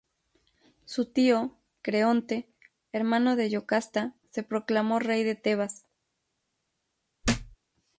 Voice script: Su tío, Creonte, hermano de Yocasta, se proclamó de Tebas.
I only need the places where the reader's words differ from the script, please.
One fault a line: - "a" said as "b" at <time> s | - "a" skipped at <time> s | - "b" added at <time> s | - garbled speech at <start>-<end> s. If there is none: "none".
- "rey" added at 5.0 s